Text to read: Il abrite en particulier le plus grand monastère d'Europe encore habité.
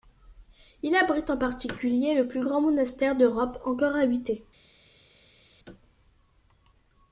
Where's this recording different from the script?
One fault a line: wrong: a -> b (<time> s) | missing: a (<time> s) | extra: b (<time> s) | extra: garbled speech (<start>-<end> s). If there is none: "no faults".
no faults